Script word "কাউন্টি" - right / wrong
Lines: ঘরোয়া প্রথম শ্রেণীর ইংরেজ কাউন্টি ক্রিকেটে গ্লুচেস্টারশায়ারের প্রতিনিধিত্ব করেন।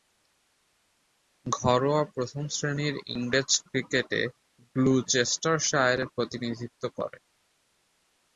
wrong